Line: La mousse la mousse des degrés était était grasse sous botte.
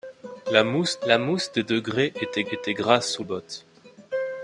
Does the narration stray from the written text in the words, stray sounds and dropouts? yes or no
no